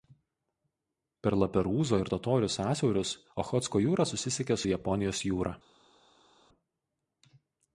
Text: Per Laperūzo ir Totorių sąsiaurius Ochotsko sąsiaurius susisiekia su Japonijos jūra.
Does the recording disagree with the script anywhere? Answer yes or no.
yes